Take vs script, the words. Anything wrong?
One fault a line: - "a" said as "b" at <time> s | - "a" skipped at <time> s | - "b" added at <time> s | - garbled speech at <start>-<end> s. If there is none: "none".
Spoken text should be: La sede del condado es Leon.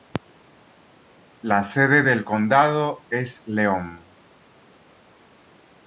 none